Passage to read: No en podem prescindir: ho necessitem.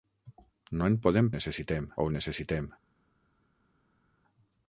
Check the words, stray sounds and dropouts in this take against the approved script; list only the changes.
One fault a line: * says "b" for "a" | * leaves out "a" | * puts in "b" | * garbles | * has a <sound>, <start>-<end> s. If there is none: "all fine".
* says "necessitem" for "prescindir"